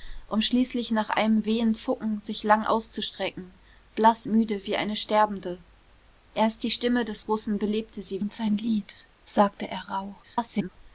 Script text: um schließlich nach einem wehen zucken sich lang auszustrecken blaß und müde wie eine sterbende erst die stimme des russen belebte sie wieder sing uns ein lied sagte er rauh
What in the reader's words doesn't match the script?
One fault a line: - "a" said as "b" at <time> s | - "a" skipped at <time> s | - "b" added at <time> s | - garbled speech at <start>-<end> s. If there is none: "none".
- "und" skipped at 4.2 s
- "wieder sing" skipped at 8.2 s
- garbled speech at 10.2-10.7 s